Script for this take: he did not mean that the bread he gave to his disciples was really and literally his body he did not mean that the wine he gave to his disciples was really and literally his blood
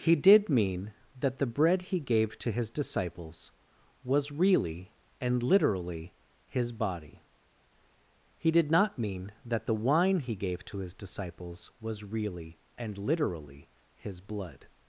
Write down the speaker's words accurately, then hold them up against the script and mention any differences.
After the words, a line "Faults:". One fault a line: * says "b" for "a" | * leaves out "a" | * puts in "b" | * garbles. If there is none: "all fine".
he did mean that the bread he gave to his disciples was really and literally his body he did not mean that the wine he gave to his disciples was really and literally his blood
Faults:
* leaves out "not"